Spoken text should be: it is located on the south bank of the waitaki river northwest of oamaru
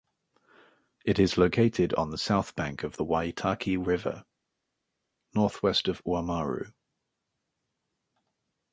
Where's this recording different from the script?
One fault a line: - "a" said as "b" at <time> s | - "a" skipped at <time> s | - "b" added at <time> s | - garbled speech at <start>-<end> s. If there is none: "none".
none